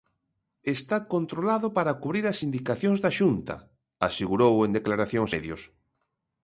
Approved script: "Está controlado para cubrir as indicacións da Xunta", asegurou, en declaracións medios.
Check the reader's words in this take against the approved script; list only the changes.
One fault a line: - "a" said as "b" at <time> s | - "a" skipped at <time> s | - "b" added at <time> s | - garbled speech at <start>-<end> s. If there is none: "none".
none